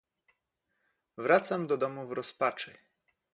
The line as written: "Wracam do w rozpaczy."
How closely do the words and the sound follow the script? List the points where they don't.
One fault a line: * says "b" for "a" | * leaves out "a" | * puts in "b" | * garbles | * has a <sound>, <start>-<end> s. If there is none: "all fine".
* puts in "domu"